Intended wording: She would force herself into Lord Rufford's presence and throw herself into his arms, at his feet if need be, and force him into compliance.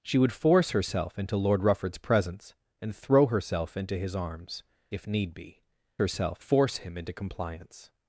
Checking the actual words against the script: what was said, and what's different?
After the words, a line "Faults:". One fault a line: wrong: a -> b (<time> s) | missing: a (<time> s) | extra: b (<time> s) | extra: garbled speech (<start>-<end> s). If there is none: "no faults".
She would force herself into Lord Rufford's presence and throw herself into his arms, if need be, herself force him into compliance.
Faults:
missing: at his feet (4.6 s)
wrong: and -> herself (6.0 s)